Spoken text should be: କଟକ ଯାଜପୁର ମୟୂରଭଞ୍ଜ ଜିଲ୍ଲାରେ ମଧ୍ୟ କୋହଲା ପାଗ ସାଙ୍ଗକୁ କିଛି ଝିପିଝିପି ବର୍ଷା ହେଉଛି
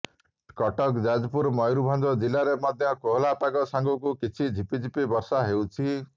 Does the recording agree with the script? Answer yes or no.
yes